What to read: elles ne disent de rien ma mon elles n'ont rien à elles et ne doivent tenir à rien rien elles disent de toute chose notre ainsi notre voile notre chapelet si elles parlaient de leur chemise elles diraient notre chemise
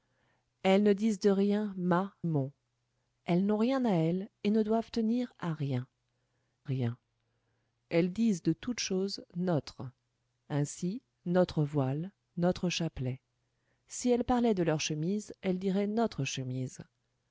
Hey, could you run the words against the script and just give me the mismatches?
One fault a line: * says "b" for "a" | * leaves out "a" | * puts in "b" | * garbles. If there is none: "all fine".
all fine